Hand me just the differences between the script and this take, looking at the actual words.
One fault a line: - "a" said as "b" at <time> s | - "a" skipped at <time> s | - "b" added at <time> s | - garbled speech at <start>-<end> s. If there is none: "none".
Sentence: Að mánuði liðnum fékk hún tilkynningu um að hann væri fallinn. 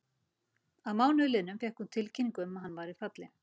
none